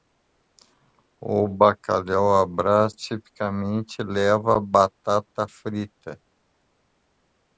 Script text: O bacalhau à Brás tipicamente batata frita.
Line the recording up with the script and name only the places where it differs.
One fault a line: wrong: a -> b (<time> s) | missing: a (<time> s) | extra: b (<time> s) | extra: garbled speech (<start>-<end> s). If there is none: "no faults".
extra: leva (4.0 s)